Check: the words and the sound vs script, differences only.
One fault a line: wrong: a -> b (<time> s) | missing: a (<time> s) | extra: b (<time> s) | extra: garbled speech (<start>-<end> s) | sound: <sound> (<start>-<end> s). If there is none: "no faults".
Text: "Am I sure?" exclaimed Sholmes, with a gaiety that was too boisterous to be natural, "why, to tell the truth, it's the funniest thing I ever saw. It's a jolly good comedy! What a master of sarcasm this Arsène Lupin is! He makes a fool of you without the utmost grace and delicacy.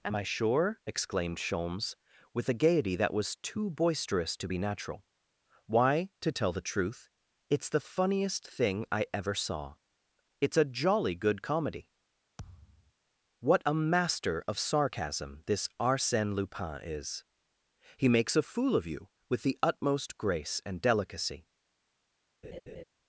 sound: thud (12.4-12.9 s)
wrong: without -> with (19.3 s)
sound: laugh (22.4-22.8 s)